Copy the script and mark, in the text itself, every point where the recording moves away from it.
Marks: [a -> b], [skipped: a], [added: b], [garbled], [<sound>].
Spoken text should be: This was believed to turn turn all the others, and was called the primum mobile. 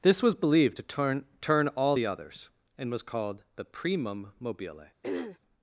This was believed to turn turn all the others, and was called the primum mobile. [throat clearing]